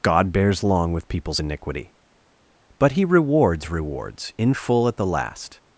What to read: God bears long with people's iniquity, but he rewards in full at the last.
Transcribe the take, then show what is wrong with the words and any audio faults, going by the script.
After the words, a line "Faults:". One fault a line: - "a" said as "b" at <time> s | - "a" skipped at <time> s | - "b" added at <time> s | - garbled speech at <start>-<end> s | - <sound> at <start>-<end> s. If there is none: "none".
God bears long with people's iniquity, but he rewards rewards in full at the last.
Faults:
- "rewards" added at 3.7 s